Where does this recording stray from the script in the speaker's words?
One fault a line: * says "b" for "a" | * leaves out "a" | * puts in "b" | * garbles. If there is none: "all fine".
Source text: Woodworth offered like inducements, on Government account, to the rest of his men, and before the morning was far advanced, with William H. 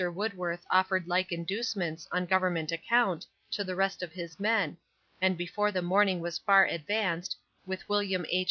all fine